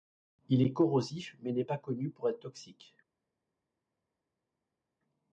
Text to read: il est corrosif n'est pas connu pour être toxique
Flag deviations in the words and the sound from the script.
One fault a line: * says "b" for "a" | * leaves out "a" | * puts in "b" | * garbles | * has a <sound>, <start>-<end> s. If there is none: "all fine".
* puts in "mais"